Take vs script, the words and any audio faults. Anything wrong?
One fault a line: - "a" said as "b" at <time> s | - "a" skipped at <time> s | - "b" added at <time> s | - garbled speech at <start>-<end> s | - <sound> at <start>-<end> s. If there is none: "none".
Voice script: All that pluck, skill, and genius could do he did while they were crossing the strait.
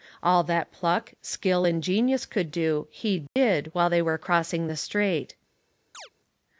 - dropout at 3.3-3.4 s
- chirp at 5.9-6.1 s